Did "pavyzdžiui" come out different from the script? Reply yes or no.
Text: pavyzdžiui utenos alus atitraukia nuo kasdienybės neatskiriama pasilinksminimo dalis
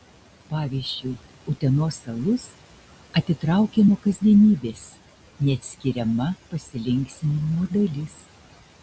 no